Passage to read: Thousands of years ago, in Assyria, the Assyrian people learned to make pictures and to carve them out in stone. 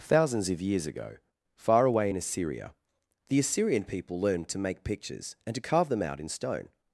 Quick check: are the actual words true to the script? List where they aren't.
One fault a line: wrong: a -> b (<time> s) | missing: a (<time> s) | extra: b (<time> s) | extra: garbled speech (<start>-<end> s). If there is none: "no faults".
extra: far away (1.6 s)